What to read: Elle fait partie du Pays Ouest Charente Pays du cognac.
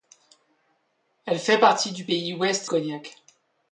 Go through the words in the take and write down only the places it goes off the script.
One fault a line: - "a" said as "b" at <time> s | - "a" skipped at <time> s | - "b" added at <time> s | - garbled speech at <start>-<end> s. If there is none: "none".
- "Charente Pays du" skipped at 2.7 s